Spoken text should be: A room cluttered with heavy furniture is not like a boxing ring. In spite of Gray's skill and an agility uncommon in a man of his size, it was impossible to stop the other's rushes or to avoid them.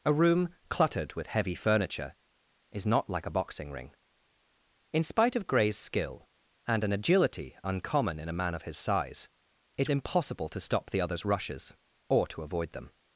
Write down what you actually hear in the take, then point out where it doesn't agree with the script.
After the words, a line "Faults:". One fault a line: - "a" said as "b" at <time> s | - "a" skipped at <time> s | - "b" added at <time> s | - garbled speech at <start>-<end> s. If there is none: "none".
A room cluttered with heavy furniture is not like a boxing ring. In spite of Gray's skill and an agility uncommon in a man of his size, it impossible to stop the other's rushes or to avoid them.
Faults:
- "was" skipped at 9.9 s